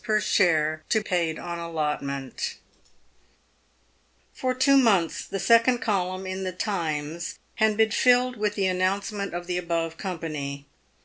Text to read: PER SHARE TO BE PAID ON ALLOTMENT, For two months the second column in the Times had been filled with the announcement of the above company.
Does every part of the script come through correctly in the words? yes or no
no